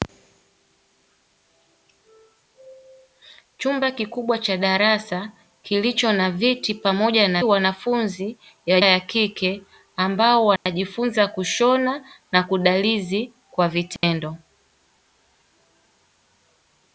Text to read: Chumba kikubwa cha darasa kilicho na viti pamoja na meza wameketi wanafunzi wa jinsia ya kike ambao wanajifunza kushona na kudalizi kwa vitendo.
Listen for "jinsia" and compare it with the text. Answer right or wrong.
wrong